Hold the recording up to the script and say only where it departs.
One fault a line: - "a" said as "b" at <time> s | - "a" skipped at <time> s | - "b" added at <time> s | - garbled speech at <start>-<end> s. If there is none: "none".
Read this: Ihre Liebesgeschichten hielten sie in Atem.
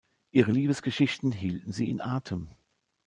none